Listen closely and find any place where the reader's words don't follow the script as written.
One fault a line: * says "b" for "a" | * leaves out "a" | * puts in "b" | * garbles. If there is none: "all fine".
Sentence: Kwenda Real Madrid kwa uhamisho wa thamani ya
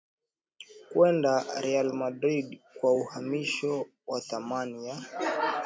all fine